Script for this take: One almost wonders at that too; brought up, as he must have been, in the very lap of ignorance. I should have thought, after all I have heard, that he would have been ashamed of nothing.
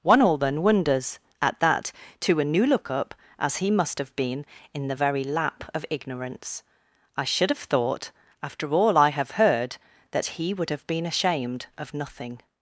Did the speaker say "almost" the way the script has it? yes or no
no